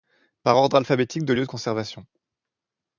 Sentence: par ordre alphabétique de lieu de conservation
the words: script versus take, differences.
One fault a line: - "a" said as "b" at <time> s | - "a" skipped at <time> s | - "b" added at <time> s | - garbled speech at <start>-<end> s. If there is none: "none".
none